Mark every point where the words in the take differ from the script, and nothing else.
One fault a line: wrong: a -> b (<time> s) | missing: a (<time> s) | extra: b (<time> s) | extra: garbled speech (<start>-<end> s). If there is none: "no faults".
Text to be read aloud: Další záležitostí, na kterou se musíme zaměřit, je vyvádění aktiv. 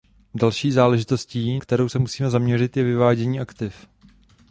missing: na (1.6 s)